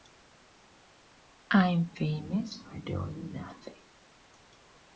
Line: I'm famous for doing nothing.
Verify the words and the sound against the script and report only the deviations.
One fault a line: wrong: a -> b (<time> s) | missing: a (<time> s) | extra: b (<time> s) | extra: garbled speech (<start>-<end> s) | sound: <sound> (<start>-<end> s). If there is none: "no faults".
no faults